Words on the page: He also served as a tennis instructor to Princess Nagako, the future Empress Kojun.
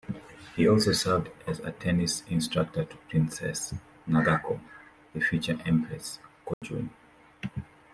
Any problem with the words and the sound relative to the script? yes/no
yes